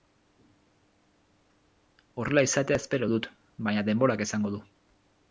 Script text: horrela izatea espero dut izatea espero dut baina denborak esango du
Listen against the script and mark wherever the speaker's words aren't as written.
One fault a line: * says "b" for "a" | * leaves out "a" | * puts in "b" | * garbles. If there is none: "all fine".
* leaves out "izatea espero dut"